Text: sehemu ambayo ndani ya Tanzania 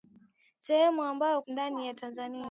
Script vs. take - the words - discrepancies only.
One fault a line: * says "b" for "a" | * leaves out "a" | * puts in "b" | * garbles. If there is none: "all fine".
all fine